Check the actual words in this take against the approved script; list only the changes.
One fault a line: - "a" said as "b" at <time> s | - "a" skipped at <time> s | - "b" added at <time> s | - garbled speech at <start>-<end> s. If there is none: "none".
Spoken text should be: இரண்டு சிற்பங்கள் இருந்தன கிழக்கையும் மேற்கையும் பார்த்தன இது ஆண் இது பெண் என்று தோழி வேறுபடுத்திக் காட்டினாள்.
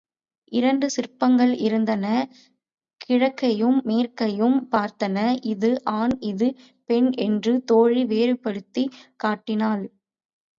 none